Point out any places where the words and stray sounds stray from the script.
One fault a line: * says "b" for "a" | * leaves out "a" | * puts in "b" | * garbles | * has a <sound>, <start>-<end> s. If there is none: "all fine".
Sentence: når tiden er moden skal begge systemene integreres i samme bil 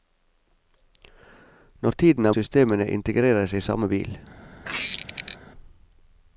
* leaves out "moden skal begge"
* has a squeak, 4.6-5.4 s